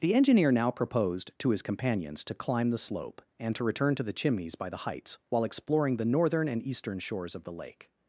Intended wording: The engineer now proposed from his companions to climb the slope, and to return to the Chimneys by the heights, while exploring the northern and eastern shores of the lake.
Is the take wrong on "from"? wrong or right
wrong